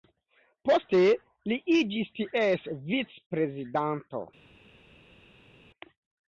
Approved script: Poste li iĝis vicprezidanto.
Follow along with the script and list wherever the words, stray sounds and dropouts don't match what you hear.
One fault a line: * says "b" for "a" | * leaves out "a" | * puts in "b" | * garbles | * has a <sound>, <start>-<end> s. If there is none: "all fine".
* puts in "ties"